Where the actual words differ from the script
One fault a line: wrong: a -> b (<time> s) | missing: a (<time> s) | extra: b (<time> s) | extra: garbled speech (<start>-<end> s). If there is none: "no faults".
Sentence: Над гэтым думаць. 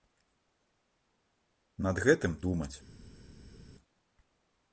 no faults